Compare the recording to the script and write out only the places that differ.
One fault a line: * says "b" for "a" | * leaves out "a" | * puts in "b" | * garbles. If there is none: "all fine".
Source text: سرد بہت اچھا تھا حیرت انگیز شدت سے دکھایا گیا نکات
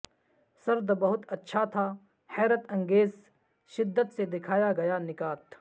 all fine